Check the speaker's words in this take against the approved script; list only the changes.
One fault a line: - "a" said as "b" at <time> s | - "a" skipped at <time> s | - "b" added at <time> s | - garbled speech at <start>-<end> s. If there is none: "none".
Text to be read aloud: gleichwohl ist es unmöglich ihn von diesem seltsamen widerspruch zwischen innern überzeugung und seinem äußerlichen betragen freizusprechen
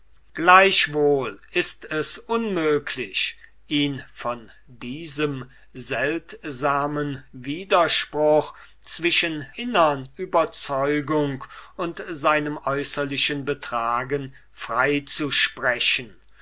none